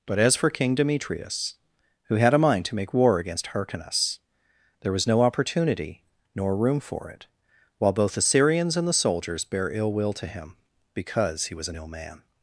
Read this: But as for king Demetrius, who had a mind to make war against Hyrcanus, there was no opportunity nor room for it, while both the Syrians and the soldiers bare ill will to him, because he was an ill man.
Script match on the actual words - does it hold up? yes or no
yes